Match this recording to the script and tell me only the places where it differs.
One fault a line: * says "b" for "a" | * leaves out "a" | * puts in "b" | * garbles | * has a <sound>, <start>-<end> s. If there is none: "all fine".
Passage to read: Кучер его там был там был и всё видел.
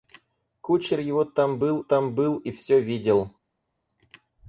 all fine